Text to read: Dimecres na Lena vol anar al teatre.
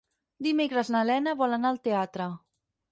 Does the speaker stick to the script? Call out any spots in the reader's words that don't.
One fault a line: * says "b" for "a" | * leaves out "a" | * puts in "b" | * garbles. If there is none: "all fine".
all fine